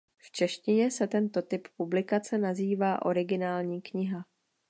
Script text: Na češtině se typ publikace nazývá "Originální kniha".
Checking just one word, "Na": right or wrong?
wrong